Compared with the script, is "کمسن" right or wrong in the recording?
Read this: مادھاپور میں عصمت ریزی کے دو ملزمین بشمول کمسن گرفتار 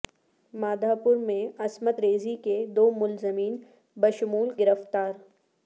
wrong